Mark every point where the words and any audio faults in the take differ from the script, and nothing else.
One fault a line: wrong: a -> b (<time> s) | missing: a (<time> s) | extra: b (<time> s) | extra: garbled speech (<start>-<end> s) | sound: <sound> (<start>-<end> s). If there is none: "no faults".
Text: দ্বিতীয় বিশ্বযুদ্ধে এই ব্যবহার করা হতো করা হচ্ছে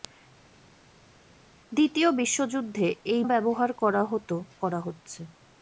no faults